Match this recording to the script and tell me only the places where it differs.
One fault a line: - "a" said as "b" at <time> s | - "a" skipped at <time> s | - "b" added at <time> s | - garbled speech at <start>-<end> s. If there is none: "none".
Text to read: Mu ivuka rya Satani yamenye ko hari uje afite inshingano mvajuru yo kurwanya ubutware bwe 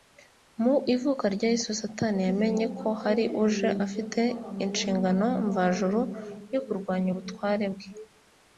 - "Yesu" added at 1.5 s